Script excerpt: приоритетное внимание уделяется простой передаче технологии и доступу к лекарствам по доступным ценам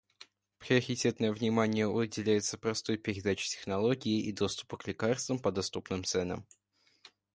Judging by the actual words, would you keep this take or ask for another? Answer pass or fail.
pass